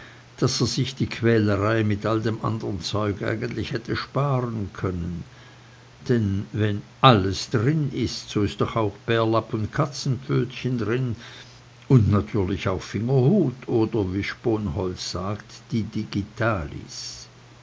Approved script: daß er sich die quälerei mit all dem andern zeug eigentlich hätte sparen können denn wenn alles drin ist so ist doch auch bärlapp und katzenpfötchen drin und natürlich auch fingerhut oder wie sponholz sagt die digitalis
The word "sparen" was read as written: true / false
true